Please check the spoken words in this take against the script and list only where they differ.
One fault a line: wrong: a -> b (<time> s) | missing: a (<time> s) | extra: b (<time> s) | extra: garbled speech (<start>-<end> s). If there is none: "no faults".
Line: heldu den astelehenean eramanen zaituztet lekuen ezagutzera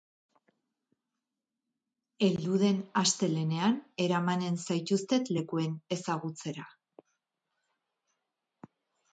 no faults